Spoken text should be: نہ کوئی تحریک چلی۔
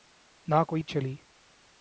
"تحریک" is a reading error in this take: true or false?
true